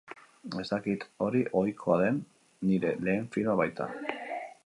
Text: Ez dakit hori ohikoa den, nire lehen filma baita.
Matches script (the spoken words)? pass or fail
pass